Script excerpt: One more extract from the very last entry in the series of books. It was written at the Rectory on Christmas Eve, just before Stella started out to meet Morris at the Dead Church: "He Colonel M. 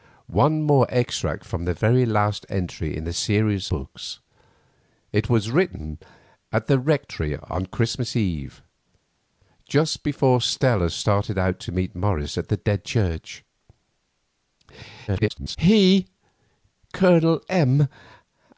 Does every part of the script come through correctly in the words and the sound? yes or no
no